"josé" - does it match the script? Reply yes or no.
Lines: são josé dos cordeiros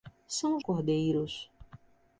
no